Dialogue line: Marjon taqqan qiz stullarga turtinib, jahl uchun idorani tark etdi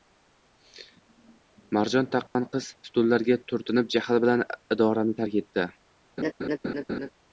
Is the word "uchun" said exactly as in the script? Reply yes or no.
no